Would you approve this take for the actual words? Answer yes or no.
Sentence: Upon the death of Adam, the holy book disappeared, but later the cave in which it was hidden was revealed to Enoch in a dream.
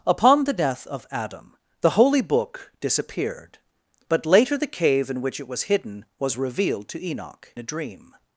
no